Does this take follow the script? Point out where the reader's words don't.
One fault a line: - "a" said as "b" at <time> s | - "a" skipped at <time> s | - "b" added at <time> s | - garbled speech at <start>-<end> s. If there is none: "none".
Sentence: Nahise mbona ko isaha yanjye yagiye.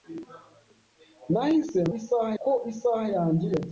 - "mbona" said as "isaha" at 2.0 s